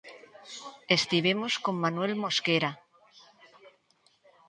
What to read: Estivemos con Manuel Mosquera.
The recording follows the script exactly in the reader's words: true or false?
true